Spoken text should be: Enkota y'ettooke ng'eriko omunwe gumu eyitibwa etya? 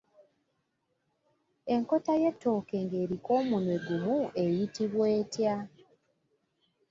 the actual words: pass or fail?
pass